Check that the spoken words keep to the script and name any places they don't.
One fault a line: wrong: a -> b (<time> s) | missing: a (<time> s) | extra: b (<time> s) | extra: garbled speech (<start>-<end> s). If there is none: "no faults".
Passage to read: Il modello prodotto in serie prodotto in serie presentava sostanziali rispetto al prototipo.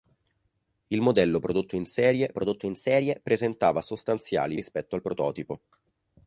no faults